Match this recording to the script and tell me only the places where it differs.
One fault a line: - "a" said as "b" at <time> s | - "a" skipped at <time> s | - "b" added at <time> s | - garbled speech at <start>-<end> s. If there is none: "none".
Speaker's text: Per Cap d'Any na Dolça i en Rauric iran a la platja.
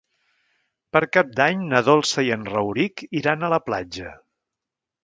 none